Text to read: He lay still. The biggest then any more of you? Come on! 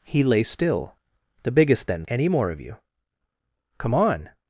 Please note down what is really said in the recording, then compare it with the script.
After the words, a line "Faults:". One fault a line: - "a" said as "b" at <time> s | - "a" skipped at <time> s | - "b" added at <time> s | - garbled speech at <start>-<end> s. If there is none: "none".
He lay still. The biggest then any more of you? Come on!
Faults:
none